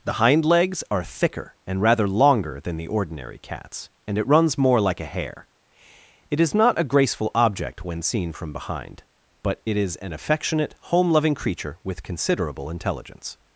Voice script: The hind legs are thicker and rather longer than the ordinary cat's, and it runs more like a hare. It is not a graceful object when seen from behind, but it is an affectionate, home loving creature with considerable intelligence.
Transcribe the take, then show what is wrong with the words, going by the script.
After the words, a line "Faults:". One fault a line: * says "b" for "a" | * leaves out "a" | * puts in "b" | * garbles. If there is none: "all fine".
The hind legs are thicker and rather longer than the ordinary cat's, and it runs more like a hare. It is not a graceful object when seen from behind, but it is an affectionate, home loving creature with considerable intelligence.
Faults:
all fine